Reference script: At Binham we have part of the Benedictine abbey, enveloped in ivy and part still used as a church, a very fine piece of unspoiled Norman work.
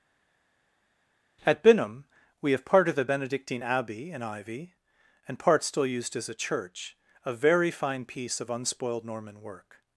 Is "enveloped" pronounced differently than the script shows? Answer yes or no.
yes